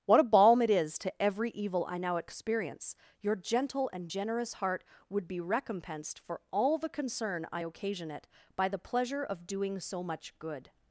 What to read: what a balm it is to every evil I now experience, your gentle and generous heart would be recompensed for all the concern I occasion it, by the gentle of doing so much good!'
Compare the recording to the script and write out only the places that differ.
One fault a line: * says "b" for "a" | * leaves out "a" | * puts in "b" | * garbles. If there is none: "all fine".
* says "pleasure" for "gentle"